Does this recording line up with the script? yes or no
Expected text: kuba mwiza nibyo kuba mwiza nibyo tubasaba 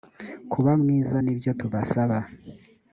no